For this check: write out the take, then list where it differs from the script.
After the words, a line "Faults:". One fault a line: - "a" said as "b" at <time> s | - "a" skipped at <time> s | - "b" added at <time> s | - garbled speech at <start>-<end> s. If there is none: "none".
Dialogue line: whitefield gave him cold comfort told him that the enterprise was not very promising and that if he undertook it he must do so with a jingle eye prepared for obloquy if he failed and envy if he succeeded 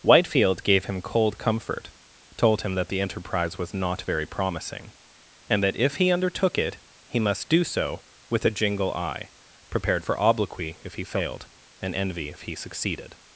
whitefield gave him cold comfort told him that the enterprise was not very promising and that if he undertook it he must do so with a jingle eye prepared for obloquy if he failed and envy if he succeeded
Faults:
none